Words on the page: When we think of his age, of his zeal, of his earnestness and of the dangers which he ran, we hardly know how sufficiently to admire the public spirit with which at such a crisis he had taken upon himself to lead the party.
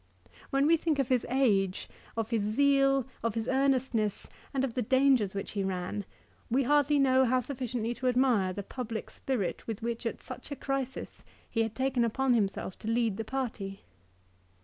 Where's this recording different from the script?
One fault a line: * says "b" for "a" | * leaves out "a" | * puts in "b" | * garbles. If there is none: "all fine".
all fine